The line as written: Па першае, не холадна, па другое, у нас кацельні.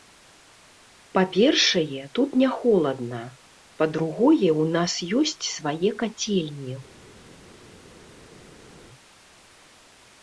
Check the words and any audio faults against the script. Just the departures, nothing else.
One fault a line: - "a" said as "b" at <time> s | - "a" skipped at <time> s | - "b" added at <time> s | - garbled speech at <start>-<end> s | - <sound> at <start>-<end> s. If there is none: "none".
- "тут" added at 2.2 s
- "ёсць свае" added at 5.2 s